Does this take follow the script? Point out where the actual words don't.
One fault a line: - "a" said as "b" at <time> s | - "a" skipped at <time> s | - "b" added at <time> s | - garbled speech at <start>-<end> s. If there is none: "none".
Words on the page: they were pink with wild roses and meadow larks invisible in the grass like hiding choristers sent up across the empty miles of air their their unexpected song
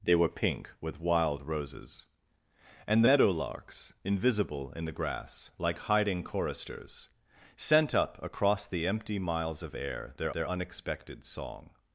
none